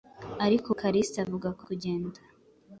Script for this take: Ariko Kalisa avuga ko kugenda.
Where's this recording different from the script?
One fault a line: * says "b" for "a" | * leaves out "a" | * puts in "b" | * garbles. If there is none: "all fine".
all fine